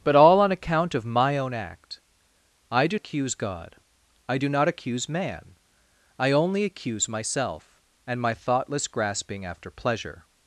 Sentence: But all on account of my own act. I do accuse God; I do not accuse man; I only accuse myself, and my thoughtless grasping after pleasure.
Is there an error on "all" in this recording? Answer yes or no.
no